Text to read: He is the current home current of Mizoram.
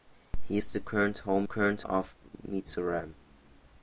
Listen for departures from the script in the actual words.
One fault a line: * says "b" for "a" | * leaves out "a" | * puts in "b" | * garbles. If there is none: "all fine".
all fine